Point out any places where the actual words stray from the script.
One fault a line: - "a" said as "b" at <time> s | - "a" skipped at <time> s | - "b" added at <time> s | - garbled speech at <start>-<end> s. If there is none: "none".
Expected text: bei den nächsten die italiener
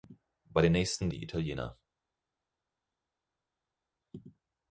none